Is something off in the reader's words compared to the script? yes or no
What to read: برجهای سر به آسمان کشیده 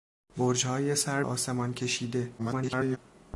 yes